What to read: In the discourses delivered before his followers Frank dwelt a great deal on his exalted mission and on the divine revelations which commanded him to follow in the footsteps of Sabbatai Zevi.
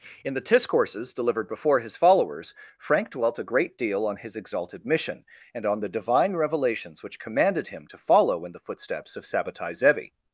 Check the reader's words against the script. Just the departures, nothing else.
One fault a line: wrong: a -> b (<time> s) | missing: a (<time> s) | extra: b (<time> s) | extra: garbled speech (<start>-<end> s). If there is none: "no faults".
no faults